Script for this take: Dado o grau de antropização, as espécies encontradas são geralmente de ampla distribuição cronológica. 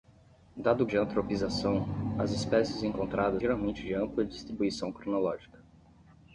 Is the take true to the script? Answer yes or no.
no